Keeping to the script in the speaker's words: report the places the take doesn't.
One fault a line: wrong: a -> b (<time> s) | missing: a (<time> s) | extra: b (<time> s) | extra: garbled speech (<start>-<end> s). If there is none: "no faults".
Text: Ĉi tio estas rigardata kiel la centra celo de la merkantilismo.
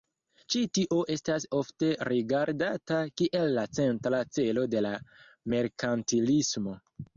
extra: ofte (1.6 s)